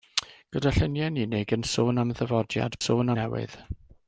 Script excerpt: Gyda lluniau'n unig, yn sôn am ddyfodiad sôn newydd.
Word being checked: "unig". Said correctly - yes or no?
yes